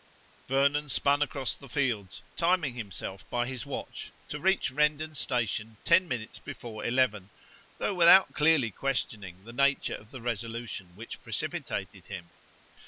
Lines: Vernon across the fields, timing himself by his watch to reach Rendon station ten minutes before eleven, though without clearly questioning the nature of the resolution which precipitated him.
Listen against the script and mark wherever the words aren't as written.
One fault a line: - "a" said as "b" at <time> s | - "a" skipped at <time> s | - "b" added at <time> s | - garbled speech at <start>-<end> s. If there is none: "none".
- "spun" added at 0.9 s